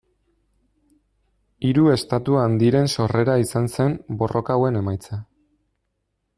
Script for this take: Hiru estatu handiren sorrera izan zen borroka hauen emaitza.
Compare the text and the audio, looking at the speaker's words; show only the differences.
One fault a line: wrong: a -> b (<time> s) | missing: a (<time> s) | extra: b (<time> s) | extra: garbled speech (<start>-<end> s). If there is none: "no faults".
no faults